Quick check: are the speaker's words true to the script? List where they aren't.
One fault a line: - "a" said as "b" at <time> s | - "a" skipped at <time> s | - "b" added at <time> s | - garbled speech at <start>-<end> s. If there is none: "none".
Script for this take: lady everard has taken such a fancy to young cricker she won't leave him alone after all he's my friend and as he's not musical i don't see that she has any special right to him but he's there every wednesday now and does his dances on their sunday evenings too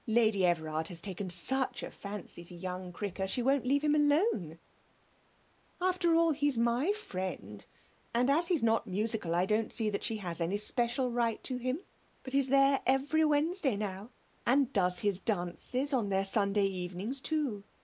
none